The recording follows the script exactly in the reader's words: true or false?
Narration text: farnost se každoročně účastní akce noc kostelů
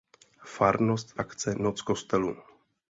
false